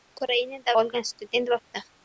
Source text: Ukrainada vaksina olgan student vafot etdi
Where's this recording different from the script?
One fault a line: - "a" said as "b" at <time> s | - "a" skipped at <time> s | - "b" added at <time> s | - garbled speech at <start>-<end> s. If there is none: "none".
- "vaksina" skipped at 0.8 s
- "vafot" skipped at 1.6 s